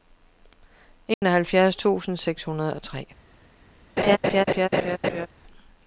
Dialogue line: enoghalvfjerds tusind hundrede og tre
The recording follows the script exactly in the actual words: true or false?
false